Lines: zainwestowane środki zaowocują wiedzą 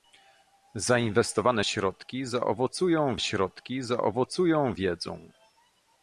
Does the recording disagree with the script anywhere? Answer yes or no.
yes